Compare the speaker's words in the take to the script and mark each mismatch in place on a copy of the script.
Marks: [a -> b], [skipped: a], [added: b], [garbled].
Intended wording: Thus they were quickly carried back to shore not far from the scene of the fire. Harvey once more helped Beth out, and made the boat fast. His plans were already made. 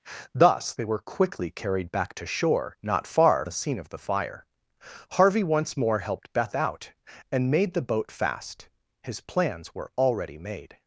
Thus they were quickly carried back to shore not far [skipped: from] the scene of the fire. Harvey once more helped Beth out, and made the boat fast. His plans were already made.